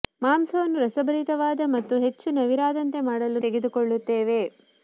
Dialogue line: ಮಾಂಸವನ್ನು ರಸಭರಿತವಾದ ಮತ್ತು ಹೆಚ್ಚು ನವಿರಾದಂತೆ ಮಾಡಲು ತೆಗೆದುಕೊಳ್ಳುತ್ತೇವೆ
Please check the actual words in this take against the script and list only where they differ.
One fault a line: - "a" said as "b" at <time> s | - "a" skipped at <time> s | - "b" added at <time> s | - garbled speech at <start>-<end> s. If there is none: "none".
none